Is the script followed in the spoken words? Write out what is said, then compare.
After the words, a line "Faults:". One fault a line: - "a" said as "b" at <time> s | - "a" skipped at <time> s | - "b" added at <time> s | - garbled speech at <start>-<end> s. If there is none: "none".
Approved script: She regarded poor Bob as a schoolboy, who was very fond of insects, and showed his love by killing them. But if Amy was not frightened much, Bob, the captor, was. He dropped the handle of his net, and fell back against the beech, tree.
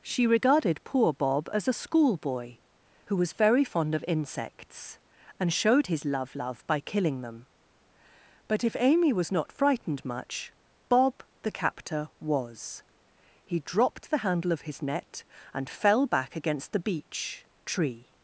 She regarded poor Bob as a schoolboy, who was very fond of insects, and showed his love love by killing them. But if Amy was not frightened much, Bob, the captor, was. He dropped the handle of his net, and fell back against the beech, tree.
Faults:
- "love" added at 6.3 s